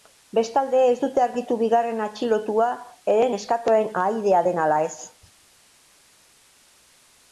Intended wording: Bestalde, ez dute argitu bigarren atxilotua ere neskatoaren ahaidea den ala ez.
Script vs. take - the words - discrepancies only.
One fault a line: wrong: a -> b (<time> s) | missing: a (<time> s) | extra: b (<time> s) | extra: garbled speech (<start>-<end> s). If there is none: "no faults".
no faults